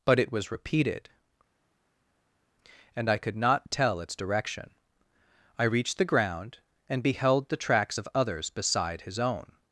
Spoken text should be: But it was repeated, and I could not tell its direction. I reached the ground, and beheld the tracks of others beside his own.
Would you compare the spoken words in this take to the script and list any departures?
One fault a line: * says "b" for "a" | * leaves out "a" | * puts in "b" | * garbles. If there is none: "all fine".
all fine